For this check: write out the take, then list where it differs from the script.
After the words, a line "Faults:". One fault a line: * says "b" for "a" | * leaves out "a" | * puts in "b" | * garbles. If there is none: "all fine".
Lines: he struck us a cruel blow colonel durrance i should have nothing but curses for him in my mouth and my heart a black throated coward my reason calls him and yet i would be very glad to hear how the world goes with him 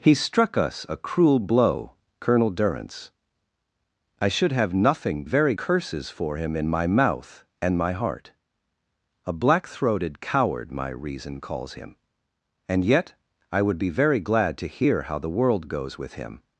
he struck us a cruel blow colonel durrance i should have nothing very curses for him in my mouth and my heart a black throated coward my reason calls him and yet i would be very glad to hear how the world goes with him
Faults:
* says "very" for "but"